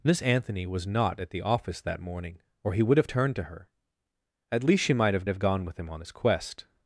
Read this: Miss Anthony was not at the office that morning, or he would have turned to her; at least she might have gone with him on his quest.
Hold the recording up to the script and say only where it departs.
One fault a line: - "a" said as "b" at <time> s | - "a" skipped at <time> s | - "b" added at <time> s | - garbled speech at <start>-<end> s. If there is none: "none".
- "have" added at 5.3 s